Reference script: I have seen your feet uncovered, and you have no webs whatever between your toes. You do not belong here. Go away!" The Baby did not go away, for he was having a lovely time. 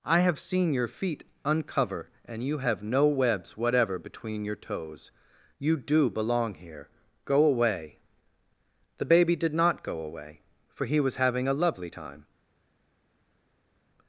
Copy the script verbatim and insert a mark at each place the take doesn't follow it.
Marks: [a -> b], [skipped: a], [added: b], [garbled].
I have seen your feet [uncovered, -> uncover] and you have no webs whatever between your toes. You do [skipped: not] belong here. Go away!" The Baby did not go away, for he was having a lovely time.